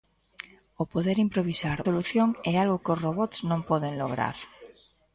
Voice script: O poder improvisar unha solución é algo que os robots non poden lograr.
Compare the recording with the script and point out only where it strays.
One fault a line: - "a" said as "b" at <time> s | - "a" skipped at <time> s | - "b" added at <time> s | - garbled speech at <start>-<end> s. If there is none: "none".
- "unha" skipped at 1.8 s